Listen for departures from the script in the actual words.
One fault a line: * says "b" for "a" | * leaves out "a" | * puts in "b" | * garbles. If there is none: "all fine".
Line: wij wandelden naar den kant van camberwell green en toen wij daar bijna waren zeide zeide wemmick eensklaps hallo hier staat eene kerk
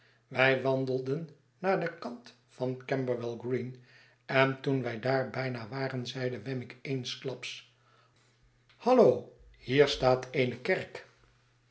* leaves out "zeide"